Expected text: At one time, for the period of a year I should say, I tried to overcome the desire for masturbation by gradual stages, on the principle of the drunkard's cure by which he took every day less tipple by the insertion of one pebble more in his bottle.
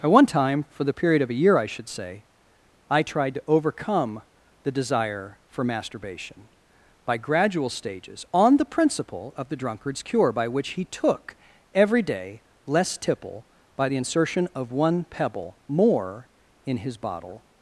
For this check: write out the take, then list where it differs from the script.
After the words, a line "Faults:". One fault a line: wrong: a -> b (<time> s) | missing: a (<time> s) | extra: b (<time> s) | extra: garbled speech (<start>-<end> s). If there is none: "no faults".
At one time, for the period of a year I should say, I tried to overcome the desire for masturbation by gradual stages, on the principle of the drunkard's cure by which he took every day less tipple by the insertion of one pebble more in his bottle.
Faults:
no faults